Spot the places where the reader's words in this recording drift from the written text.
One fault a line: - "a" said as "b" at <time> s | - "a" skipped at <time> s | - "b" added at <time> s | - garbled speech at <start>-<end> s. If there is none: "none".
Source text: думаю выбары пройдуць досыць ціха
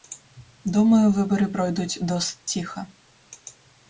none